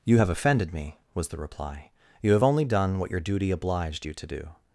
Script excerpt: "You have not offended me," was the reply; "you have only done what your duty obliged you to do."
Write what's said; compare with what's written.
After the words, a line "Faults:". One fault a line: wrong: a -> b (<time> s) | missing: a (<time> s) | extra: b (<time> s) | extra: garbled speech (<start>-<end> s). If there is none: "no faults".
"You have offended me," was the reply; "you have only done what your duty obliged you to do."
Faults:
missing: not (0.3 s)